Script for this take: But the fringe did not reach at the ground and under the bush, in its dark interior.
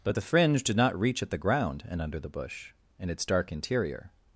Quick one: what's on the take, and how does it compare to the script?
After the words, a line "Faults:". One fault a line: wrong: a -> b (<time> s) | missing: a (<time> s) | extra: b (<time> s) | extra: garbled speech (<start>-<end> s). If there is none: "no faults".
But the fringe did not reach at the ground and under the bush, in its dark interior.
Faults:
no faults